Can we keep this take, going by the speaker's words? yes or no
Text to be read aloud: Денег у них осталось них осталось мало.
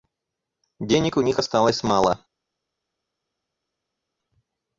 no